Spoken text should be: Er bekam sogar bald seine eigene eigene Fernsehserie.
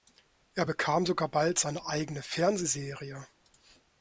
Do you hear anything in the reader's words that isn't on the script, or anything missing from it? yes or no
yes